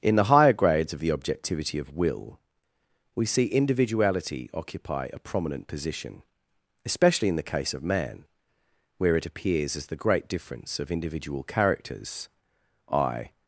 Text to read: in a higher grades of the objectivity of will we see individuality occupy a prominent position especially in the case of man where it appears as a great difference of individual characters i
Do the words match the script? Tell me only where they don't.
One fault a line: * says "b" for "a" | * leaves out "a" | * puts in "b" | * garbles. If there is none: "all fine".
* says "the" for "a"
* says "the" for "a"